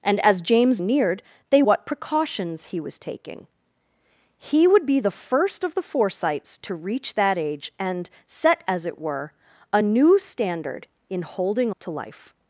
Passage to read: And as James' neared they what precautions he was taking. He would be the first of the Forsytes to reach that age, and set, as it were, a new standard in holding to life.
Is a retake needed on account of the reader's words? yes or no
no